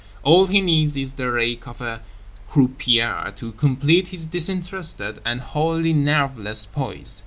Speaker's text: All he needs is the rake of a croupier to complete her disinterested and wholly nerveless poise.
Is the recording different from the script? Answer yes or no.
yes